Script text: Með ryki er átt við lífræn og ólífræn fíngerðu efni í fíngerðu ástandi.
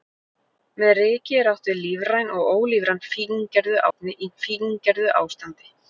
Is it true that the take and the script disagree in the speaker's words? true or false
false